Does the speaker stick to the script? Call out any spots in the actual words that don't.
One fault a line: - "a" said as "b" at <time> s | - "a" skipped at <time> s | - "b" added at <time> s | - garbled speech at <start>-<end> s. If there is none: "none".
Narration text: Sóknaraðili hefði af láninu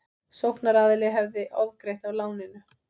- "ofgreitt" added at 1.7 s